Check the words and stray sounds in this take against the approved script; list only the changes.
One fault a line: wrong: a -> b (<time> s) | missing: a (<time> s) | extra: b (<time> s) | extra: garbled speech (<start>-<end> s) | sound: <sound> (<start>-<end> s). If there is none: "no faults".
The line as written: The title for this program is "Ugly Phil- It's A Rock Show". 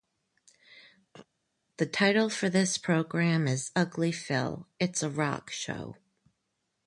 sound: throat clearing (1.1-1.3 s)